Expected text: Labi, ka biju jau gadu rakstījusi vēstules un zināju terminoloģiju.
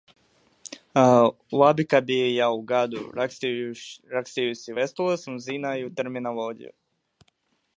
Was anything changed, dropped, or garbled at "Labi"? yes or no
no